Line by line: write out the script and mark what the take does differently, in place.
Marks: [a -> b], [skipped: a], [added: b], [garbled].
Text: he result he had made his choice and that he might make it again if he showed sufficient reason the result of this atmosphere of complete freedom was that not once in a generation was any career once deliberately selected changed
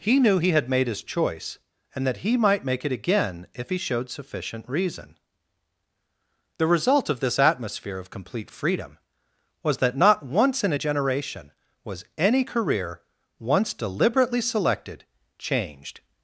he [result -> knew] he had made his choice and that he might make it again if he showed sufficient reason the result of this atmosphere of complete freedom was that not once in a generation was any career once deliberately selected changed